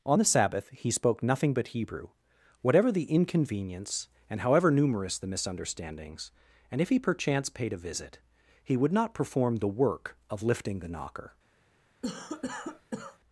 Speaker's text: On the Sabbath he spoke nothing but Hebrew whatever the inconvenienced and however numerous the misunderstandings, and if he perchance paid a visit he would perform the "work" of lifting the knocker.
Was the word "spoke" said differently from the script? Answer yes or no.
no